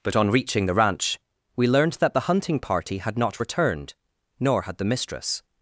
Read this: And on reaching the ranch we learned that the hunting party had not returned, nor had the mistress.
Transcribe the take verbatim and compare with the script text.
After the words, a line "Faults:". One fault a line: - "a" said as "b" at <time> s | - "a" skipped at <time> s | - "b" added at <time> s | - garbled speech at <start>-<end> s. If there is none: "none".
But on reaching the ranch we learned that the hunting party had not returned, nor had the mistress.
Faults:
- "And" said as "But" at 0.0 s